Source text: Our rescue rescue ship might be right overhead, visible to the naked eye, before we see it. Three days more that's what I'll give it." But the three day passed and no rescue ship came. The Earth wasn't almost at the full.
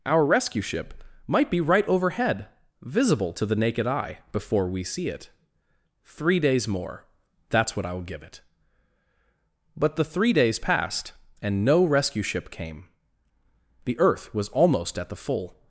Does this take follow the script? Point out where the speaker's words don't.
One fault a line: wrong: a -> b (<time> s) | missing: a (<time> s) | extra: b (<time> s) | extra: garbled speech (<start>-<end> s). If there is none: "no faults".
missing: rescue (0.6 s)
wrong: day -> days (10.3 s)
wrong: wasn't -> was (14.3 s)